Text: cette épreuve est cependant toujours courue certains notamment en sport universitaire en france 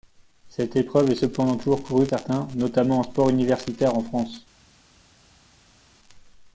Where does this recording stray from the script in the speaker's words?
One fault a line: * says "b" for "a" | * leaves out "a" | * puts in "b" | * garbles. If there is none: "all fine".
all fine